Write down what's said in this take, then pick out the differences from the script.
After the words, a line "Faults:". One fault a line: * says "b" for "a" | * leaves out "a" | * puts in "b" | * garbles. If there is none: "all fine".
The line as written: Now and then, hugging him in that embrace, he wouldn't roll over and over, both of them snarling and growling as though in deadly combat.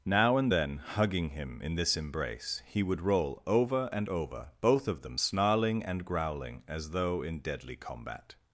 Now and then, hugging him in this embrace, he would roll over and over, both of them snarling and growling as though in deadly combat.
Faults:
* says "this" for "that"
* says "would" for "wouldn't"